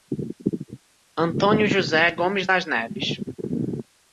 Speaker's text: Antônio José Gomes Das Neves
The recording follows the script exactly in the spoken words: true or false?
true